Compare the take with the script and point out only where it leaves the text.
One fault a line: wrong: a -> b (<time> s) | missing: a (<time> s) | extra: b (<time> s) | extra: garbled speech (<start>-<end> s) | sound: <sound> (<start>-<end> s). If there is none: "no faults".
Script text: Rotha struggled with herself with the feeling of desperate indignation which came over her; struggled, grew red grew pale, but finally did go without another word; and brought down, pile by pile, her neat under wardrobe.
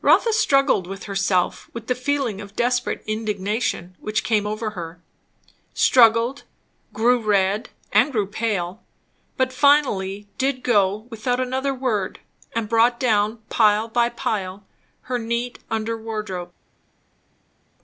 extra: and (7.9 s)